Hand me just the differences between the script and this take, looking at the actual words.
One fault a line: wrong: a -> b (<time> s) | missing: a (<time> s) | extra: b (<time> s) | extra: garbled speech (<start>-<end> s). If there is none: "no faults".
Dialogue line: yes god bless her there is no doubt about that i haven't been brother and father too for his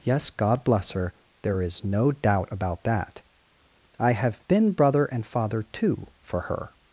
wrong: haven't -> have (4.1 s)
wrong: his -> her (6.4 s)